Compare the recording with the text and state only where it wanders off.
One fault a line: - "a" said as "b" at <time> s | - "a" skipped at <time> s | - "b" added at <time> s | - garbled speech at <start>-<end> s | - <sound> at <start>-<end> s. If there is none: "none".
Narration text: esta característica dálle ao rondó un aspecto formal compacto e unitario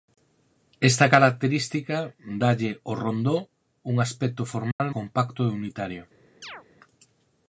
- dropout at 4.7-4.8 s
- chirp at 6.4-6.6 s